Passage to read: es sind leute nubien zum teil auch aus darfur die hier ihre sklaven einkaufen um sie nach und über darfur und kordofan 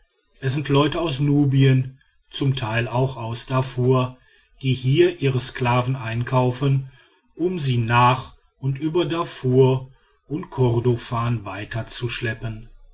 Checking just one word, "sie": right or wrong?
right